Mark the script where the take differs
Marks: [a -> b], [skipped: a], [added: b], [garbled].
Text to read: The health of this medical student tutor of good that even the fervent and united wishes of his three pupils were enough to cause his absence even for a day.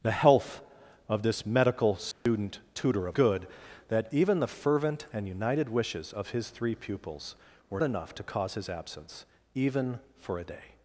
The health of this medical student tutor of good that even the fervent and united wishes of his three pupils were enough to cause his absence even for a day.